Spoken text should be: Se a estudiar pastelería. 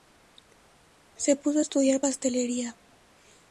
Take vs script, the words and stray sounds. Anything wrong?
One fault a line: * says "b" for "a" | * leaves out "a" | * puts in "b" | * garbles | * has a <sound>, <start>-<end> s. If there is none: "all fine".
* puts in "puso"